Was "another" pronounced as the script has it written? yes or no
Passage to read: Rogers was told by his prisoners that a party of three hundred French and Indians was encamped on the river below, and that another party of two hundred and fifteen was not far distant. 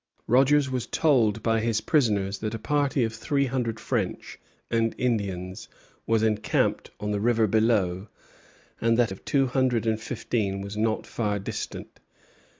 no